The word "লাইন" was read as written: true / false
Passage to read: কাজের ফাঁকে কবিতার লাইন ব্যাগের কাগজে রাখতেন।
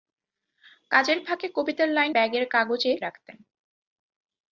true